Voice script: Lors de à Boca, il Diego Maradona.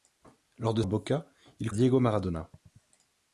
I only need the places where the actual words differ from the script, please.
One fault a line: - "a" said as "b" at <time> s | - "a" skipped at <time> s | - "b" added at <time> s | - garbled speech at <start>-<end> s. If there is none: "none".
none